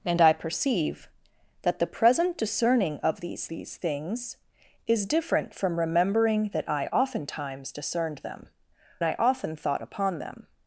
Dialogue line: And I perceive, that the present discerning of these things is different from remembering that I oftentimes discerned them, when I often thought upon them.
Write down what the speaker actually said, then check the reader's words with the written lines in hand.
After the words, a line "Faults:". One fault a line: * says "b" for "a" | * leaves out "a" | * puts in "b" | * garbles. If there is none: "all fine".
And I perceive, that the present discerning of these these things is different from remembering that I oftentimes discerned them, I often thought upon them.
Faults:
* puts in "these"
* leaves out "when"